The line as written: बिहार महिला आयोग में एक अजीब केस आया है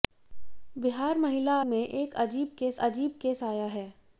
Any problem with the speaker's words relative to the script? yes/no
yes